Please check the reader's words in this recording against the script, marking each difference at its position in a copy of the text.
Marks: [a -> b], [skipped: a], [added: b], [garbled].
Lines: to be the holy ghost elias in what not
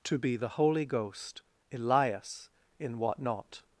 to be the holy ghost elias in what not